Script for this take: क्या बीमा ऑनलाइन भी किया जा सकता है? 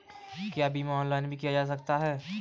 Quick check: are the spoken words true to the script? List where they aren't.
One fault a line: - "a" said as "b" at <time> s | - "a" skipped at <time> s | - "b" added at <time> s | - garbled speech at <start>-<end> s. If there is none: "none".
none